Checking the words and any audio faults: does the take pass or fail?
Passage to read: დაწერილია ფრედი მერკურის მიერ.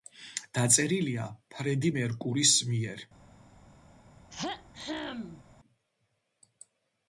fail